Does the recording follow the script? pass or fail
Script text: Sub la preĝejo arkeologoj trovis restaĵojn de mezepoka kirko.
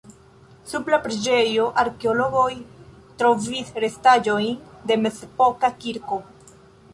pass